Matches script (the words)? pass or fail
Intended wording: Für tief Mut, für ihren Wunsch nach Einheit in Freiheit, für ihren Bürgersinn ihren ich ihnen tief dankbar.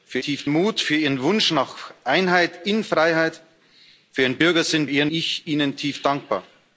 pass